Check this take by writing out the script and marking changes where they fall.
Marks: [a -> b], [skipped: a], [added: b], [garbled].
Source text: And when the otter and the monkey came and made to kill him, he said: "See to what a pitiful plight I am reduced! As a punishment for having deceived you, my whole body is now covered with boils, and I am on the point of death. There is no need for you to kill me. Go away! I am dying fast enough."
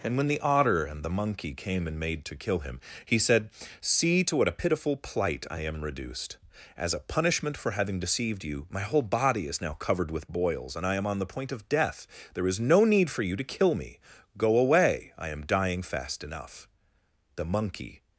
And when the otter and the monkey came and made to kill him, he said: "See to what a pitiful plight I am reduced! As a punishment for having deceived you, my whole body is now covered with boils, and I am on the point of death. There is no need for you to kill me. Go away! I am dying fast enough." [added: The monkey]